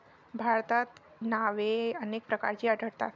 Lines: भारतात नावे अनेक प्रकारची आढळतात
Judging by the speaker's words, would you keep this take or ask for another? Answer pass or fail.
pass